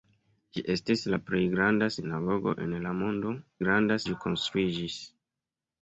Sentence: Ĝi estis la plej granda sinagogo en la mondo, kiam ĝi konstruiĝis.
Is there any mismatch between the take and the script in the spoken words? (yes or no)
yes